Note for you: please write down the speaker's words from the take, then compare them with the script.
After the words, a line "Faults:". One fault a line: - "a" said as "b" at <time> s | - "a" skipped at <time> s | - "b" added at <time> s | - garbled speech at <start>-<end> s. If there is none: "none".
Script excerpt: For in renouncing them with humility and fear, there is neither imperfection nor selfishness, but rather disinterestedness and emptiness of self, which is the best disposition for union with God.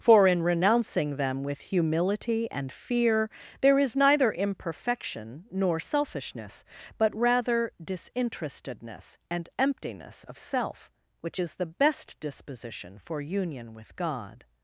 For in renouncing them with humility and fear, there is neither imperfection nor selfishness, but rather disinterestedness and emptiness of self, which is the best disposition for union with God.
Faults:
none